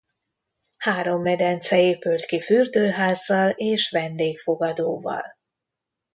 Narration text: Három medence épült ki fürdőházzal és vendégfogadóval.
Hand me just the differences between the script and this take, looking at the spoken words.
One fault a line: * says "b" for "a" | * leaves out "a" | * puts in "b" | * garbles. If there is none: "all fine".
all fine